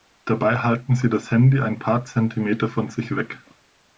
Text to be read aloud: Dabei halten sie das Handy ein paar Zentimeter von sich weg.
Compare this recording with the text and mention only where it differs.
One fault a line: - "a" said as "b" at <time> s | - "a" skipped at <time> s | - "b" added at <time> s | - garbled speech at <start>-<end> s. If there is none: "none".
none